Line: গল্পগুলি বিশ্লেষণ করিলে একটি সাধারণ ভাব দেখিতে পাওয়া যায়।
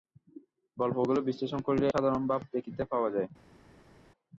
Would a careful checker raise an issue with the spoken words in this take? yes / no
yes